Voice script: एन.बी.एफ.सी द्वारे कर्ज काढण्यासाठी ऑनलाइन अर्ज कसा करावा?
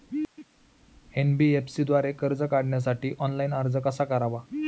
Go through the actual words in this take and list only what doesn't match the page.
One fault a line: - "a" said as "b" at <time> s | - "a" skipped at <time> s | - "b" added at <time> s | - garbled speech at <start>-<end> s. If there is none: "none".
none